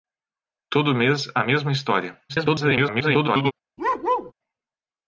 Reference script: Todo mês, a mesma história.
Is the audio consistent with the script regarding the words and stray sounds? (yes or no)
no